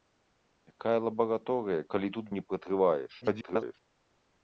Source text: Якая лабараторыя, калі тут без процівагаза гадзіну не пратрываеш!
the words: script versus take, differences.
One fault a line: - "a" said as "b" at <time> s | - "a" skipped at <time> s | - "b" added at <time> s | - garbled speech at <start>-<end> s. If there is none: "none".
- "без процівагаза гадзіну" skipped at 2.2 s
- garbled speech at 3.2-3.8 s